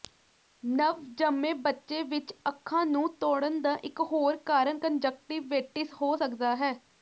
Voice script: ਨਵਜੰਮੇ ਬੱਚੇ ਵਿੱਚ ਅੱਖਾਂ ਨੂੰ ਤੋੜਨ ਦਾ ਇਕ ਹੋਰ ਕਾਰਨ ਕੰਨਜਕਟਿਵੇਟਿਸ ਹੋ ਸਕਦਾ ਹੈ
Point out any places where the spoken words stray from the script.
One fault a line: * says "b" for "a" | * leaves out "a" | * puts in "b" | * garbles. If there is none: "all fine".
all fine